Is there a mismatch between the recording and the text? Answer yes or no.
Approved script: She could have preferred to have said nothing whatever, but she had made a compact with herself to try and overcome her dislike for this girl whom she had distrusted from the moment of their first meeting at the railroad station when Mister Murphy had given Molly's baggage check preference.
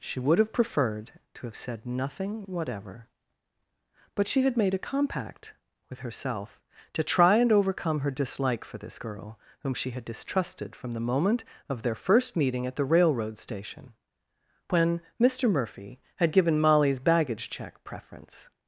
yes